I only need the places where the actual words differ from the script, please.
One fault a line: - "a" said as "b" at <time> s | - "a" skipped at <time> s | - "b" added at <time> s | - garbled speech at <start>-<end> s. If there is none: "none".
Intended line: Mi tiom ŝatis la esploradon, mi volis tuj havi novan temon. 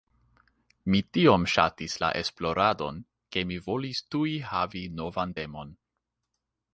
- "ke" added at 3.4 s